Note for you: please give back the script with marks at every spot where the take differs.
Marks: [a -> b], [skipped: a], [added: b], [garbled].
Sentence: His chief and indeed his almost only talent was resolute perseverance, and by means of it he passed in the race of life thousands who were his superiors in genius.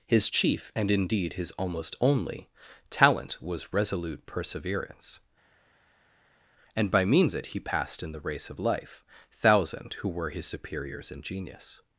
His chief and indeed his almost only talent was resolute perseverance, and by means [skipped: of] it he passed in the race of life [thousands -> thousand] who were his superiors in genius.